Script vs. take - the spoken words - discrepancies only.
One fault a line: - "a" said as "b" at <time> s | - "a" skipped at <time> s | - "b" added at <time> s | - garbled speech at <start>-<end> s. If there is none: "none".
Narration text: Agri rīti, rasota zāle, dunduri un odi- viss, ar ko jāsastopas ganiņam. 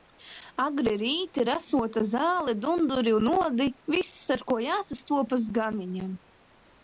none